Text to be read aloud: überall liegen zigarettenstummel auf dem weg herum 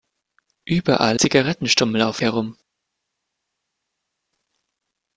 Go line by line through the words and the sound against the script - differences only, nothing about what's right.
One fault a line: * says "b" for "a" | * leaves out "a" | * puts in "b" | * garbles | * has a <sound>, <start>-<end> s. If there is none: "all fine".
* leaves out "liegen"
* leaves out "dem weg"